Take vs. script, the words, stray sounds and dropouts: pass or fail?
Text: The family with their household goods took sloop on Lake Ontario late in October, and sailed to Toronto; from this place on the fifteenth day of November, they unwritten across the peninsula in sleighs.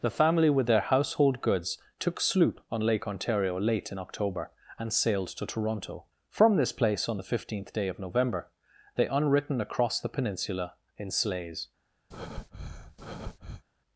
fail